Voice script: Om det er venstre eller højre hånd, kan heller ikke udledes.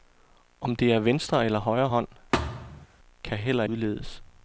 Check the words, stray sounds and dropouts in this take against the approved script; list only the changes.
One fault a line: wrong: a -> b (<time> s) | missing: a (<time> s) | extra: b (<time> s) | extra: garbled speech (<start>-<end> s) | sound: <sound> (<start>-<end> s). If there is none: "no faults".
sound: thud (2.3-2.9 s)
missing: ikke (3.6 s)